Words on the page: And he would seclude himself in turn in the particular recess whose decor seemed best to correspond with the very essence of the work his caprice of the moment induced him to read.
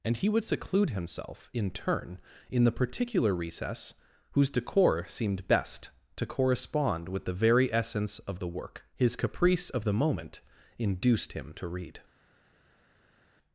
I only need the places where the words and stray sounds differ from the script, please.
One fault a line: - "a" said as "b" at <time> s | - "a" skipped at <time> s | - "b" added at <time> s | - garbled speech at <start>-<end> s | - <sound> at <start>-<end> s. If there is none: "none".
none